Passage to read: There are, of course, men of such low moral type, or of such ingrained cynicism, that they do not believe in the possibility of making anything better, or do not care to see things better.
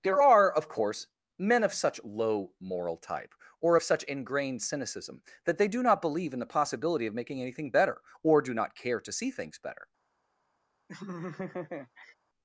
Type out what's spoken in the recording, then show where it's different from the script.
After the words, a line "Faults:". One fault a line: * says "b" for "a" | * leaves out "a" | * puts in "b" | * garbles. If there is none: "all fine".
There are, of course, men of such low moral type, or of such ingrained cynicism, that they do not believe in the possibility of making anything better, or do not care to see things better.
Faults:
all fine